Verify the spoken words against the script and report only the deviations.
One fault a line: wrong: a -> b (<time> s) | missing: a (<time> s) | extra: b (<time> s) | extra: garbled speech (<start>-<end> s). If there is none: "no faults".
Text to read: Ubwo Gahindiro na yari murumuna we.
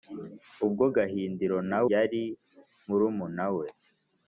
no faults